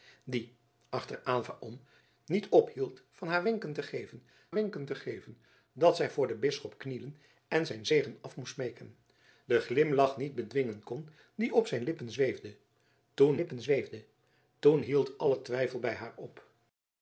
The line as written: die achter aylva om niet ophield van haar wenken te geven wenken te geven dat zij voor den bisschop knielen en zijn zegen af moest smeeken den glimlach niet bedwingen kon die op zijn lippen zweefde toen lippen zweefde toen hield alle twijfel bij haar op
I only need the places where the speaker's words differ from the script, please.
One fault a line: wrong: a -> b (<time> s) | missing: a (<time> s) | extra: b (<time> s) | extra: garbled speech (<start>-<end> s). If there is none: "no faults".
no faults